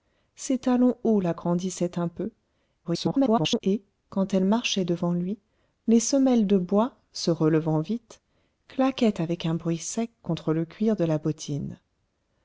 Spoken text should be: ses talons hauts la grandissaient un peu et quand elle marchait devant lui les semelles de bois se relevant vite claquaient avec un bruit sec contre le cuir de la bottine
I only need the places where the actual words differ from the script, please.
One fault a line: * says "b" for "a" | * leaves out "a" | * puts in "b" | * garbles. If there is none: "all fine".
* garbles